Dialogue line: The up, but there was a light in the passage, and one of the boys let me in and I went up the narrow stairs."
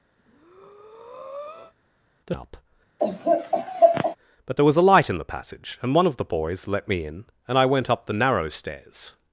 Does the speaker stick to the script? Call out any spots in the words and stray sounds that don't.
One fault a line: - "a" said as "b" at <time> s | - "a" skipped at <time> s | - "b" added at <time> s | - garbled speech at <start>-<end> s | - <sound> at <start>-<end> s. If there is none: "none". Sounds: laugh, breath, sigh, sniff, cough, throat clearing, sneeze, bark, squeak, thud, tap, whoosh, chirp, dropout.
- breath at 0.2-1.7 s
- laugh at 3.0-4.2 s